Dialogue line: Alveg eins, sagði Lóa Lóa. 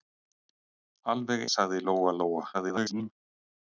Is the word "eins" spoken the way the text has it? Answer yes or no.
no